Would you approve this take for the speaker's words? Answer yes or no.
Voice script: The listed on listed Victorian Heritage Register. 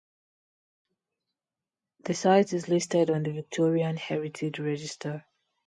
no